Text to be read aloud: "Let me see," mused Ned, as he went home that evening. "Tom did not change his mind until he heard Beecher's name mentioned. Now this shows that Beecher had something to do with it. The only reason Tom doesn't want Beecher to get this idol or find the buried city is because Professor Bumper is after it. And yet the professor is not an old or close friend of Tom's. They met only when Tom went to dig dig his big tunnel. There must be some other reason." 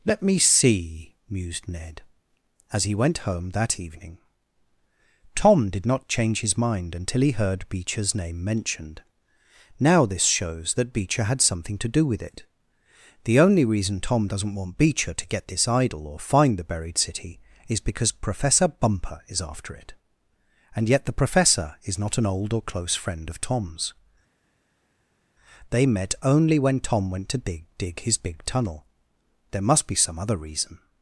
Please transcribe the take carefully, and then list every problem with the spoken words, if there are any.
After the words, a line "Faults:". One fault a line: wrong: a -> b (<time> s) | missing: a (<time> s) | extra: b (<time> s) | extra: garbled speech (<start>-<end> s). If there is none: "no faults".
"Let me see," mused Ned, as he went home that evening. "Tom did not change his mind until he heard Beecher's name mentioned. Now this shows that Beecher had something to do with it. The only reason Tom doesn't want Beecher to get this idol or find the buried city is because Professor Bumper is after it. And yet the professor is not an old or close friend of Tom's. They met only when Tom went to dig dig his big tunnel. There must be some other reason."
Faults:
no faults